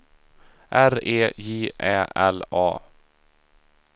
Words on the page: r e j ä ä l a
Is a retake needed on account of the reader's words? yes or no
yes